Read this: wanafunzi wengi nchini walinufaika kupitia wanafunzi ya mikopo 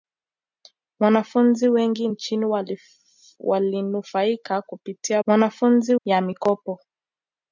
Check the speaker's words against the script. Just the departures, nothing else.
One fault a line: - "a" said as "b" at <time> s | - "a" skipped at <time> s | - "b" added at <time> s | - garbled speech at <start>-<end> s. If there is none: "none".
none